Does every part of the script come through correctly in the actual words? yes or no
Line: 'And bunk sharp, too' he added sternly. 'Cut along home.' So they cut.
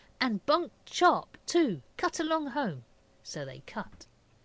no